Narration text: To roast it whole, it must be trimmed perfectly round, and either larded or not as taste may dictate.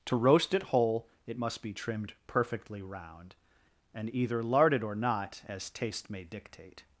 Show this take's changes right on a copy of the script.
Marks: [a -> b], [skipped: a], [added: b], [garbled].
To roast it whole, it must be trimmed perfectly round, and either larded or not as taste may dictate.